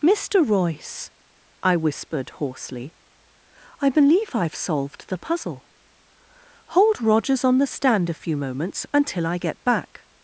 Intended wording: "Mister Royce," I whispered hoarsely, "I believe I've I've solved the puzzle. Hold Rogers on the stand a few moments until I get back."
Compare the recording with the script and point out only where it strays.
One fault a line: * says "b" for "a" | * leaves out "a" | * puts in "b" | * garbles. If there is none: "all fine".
* leaves out "I've"